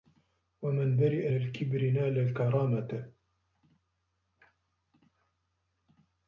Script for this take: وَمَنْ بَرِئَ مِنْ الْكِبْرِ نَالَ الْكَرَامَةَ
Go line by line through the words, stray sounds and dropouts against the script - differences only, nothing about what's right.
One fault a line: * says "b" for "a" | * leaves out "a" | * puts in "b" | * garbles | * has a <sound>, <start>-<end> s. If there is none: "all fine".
* leaves out "مِنْ"